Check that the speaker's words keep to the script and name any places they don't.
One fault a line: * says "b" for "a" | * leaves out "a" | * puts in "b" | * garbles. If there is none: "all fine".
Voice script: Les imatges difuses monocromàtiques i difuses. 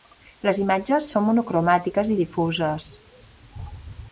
* says "són" for "difuses"